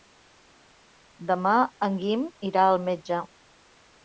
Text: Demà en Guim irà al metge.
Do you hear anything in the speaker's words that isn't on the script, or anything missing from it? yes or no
no